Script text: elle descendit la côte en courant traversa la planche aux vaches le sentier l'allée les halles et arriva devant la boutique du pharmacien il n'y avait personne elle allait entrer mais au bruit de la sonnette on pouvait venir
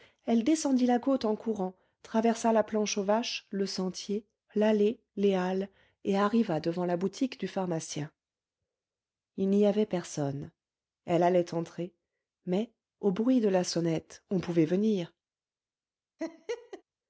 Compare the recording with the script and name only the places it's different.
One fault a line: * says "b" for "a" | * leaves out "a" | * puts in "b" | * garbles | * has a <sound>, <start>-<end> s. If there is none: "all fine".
* has a laugh, 16.2-16.8 s